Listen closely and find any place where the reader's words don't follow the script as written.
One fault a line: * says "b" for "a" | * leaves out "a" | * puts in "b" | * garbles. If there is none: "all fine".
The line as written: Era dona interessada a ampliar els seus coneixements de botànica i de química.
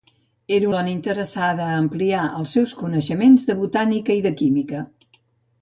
all fine